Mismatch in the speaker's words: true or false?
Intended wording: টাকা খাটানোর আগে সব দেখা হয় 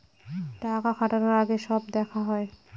false